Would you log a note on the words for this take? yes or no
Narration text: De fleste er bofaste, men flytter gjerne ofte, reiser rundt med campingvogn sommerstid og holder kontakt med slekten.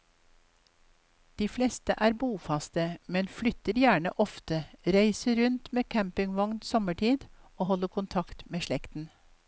no